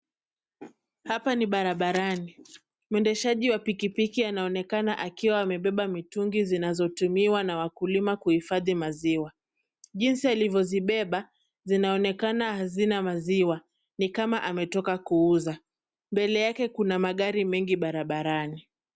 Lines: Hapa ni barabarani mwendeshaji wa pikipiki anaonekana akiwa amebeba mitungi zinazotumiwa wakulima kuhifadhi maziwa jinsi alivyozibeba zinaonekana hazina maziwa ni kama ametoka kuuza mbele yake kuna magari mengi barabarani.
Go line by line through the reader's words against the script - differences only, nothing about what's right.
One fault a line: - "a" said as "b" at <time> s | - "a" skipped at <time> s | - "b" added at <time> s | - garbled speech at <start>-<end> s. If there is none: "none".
- "na" added at 7.4 s